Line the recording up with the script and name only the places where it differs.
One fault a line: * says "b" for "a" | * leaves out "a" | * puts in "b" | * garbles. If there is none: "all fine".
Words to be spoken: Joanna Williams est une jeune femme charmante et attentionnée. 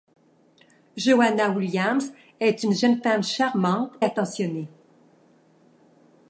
* leaves out "et"